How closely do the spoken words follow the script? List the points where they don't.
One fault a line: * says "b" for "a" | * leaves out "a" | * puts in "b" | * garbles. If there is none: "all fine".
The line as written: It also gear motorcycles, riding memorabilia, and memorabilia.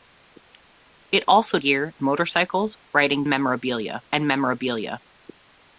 all fine